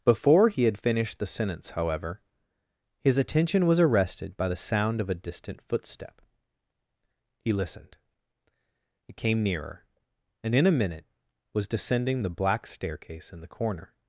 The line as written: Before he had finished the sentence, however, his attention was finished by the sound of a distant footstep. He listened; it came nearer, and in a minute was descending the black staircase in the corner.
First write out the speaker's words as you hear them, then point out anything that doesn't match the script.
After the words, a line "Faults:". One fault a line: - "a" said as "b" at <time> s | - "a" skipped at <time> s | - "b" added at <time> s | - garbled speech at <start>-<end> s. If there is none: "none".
Before he had finished the sentence, however, his attention was arrested by the sound of a distant footstep. He listened; it came nearer, and in a minute was descending the black staircase in the corner.
Faults:
- "finished" said as "arrested" at 3.8 s